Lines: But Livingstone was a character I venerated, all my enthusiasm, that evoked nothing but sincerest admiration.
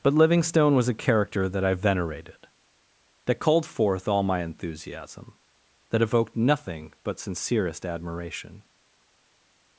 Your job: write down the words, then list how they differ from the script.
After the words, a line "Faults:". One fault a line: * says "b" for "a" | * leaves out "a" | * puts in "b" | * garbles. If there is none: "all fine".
But Livingstone was a character that I venerated, that called forth all my enthusiasm, that evoked nothing but sincerest admiration.
Faults:
* puts in "that"
* puts in "that called forth"